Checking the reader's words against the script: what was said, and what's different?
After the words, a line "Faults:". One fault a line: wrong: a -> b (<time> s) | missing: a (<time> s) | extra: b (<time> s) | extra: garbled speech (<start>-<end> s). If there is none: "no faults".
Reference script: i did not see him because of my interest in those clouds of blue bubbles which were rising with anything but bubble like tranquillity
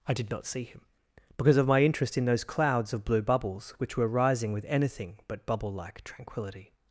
i did not see him because of my interest in those clouds of blue bubbles which were rising with anything but bubble like tranquillity
Faults:
no faults